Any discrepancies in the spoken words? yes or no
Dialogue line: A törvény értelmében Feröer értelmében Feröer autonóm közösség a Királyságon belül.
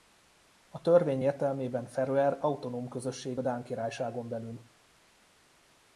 yes